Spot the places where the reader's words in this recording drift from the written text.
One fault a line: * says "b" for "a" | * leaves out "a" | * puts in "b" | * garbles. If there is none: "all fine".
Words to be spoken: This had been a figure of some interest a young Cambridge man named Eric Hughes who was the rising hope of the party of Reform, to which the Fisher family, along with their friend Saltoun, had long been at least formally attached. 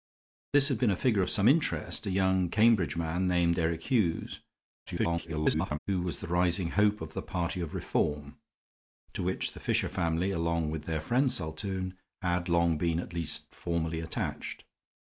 * garbles